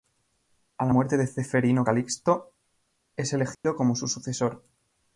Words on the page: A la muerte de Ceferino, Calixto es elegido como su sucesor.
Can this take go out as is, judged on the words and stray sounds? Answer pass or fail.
fail